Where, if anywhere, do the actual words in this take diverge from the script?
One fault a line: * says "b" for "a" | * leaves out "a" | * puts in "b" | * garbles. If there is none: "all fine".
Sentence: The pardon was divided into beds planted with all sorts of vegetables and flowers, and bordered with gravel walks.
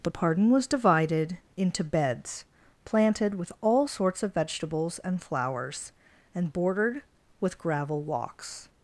all fine